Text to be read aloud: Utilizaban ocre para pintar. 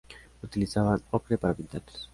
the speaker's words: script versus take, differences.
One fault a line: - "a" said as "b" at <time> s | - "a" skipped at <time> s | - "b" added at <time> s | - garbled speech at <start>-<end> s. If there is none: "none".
none